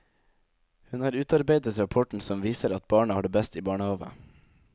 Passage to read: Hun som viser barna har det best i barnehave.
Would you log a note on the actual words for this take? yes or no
yes